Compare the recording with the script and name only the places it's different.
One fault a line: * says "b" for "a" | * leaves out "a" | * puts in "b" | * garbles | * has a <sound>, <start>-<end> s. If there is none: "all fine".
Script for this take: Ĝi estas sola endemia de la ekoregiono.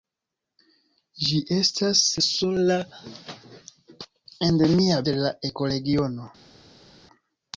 all fine